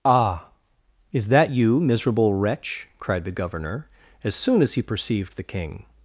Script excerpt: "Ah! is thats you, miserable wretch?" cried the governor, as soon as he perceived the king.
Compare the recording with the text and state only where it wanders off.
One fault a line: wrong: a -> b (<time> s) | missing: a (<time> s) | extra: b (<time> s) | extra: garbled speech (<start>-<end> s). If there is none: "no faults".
wrong: thats -> that (1.3 s)